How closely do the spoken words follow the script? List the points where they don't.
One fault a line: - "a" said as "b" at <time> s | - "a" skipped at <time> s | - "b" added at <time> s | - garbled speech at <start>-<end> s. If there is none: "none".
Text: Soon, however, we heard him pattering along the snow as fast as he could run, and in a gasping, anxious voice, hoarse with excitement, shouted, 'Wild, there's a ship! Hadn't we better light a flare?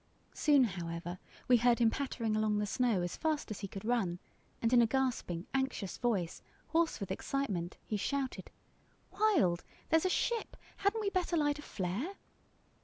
- "he" added at 7.8 s